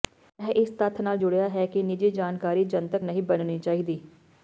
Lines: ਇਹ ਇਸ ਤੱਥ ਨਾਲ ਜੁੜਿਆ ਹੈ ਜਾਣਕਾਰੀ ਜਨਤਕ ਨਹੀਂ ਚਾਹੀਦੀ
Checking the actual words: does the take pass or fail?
fail